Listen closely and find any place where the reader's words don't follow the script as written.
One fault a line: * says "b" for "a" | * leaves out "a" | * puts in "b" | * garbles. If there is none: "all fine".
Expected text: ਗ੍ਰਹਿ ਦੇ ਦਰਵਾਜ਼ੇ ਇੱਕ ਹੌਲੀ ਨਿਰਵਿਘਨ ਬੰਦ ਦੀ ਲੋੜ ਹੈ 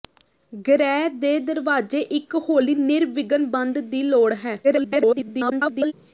* garbles